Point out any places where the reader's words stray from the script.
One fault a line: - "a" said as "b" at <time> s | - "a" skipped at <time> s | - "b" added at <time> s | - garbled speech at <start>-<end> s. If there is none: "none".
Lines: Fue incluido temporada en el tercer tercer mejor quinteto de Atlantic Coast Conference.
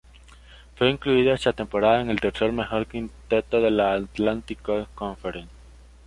- "esa" added at 1.3 s
- "tercer" skipped at 2.5 s
- "la" added at 3.7 s